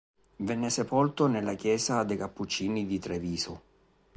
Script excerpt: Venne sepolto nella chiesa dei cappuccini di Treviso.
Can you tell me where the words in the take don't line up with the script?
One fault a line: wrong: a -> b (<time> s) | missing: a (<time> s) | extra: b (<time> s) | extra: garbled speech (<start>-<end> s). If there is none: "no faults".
no faults